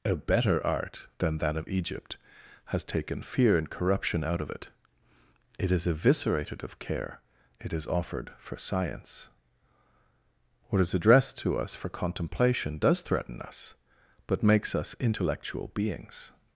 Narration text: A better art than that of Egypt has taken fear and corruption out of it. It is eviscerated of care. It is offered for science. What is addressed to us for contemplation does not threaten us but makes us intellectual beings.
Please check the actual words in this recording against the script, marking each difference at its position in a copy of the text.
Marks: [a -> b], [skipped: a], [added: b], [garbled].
A better art than that of Egypt has taken fear and corruption out of it. It is eviscerated of care. It is offered for science. What is addressed to us for contemplation does [skipped: not] threaten us but makes us intellectual beings.